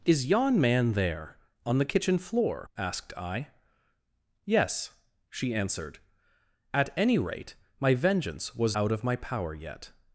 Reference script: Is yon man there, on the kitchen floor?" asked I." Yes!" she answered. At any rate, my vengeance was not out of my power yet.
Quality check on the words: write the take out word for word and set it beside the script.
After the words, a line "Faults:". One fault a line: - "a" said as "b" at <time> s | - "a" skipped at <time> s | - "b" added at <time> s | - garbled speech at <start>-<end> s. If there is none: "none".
Is yon man there, on the kitchen floor?" asked I." Yes!" she answered. At any rate, my vengeance was out of my power yet.
Faults:
- "not" skipped at 8.8 s